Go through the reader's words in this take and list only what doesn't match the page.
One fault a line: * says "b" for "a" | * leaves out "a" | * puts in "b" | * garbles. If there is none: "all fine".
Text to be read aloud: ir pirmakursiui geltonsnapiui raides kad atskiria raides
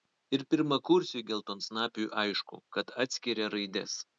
* says "aišku" for "raides"